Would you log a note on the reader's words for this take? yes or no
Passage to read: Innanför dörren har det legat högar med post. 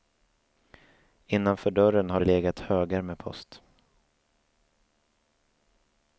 no